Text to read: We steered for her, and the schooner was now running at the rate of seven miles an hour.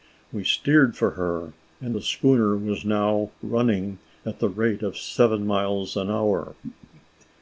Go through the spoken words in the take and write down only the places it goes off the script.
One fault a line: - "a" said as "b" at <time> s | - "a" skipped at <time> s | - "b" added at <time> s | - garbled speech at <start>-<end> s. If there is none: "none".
none